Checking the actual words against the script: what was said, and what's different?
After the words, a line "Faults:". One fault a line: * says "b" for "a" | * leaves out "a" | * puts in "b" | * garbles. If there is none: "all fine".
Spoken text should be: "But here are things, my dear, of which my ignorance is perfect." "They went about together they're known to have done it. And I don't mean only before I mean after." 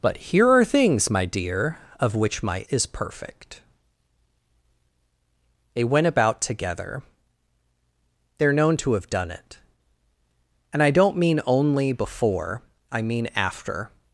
"But here are things, my dear, of which my is perfect." "They went about together they're known to have done it. And I don't mean only before I mean after."
Faults:
* leaves out "ignorance"